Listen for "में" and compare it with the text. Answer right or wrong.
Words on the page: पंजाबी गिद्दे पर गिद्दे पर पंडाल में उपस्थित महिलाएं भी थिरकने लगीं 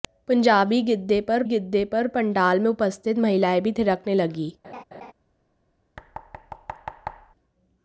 right